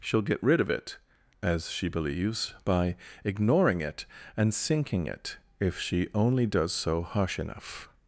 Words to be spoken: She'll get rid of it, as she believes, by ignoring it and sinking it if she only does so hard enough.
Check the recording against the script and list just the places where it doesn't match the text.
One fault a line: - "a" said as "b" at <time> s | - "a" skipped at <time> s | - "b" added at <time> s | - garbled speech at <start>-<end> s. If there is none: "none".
- "hard" said as "harsh" at 7.0 s